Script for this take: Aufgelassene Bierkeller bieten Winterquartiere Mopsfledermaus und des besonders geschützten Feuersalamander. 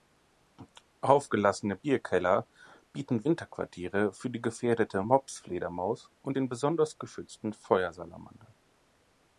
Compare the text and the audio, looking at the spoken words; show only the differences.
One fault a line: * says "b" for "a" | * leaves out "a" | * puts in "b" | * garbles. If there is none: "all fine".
* puts in "für die gefährdete"
* says "den" for "des"